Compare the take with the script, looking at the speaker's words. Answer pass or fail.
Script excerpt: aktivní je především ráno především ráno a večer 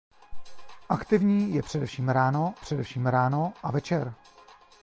pass